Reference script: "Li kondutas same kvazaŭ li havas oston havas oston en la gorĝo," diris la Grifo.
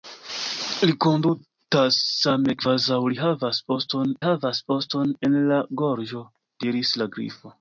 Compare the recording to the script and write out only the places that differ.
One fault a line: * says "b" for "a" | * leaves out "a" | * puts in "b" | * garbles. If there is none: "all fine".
all fine